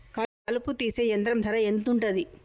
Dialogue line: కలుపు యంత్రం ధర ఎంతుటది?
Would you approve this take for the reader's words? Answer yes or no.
no